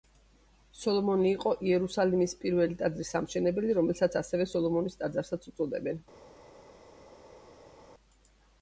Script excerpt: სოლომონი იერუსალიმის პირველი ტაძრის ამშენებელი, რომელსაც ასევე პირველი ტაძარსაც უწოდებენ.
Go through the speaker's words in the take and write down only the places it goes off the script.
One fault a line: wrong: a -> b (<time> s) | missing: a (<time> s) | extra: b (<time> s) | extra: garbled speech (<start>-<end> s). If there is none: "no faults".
extra: იყო (1.3 s)
wrong: პირველი -> სოლომონის (4.5 s)